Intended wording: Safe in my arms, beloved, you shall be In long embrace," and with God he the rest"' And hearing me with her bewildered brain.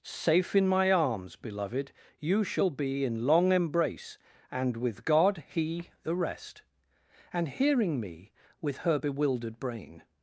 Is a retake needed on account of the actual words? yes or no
no